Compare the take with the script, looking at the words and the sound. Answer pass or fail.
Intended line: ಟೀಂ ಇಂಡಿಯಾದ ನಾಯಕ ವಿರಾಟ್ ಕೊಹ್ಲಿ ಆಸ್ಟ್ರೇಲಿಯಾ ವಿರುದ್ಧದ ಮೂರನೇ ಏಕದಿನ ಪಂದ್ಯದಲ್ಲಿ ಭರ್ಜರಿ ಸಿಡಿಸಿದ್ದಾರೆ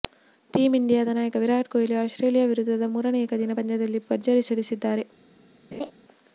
fail